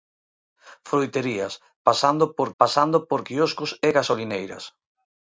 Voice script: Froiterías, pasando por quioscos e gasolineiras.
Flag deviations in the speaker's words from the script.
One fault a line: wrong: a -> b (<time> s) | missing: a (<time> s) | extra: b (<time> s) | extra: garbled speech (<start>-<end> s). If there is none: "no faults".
extra: pasando por (2.6 s)